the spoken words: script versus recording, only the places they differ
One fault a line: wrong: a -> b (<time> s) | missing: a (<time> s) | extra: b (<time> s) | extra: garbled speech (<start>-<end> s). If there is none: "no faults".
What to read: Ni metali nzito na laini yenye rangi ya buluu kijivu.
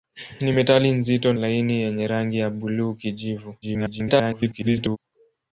missing: na (1.3 s)
extra: garbled speech (3.6-5.0 s)